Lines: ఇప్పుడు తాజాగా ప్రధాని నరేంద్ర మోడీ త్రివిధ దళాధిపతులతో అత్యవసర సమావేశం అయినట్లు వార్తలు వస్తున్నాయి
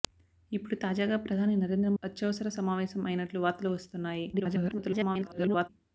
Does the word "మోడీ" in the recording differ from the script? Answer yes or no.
yes